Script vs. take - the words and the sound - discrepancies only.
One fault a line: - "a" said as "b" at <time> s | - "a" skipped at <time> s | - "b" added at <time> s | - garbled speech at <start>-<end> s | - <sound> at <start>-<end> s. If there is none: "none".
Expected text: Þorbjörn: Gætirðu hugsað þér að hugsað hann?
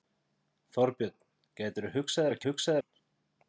none